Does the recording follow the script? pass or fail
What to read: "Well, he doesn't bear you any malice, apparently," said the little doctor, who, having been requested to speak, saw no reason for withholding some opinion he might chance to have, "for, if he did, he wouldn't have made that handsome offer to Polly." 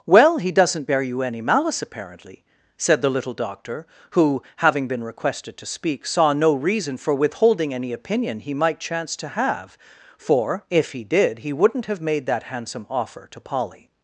fail